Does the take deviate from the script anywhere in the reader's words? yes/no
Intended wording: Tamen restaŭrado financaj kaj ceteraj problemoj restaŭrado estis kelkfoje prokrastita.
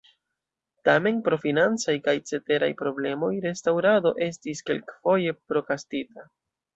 yes